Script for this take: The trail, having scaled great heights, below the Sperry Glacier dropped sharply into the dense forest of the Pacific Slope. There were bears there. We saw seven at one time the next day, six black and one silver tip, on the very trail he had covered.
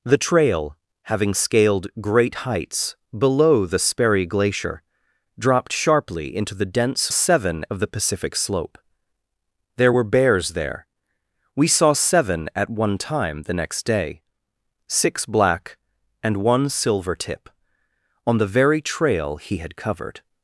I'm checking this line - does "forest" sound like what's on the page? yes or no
no